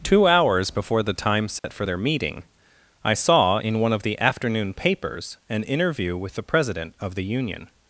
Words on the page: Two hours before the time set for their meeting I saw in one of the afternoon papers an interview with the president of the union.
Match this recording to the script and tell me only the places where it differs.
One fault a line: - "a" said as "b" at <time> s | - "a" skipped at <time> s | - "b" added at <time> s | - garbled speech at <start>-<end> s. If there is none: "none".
none